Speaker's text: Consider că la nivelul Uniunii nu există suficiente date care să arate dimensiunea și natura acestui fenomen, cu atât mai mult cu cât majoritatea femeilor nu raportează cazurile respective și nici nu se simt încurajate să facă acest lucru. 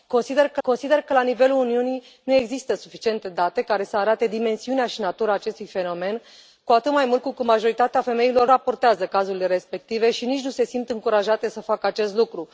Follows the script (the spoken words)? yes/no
no